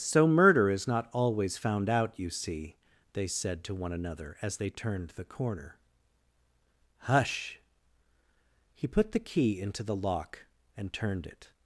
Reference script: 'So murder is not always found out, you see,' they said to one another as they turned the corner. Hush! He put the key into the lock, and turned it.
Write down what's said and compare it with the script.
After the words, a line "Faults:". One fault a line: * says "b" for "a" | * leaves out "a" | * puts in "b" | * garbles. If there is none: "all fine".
'So murder is not always found out, you see,' they said to one another as they turned the corner. Hush! He put the key into the lock, and turned it.
Faults:
all fine